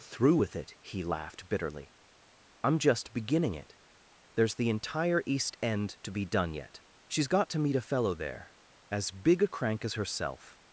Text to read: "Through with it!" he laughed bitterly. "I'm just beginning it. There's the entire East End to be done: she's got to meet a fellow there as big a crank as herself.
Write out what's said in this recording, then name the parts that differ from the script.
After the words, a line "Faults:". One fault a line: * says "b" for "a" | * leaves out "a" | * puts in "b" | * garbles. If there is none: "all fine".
"Through with it!" he laughed bitterly. "I'm just beginning it. There's the entire East End to be done yet: she's got to meet a fellow there as big a crank as herself.
Faults:
* puts in "yet"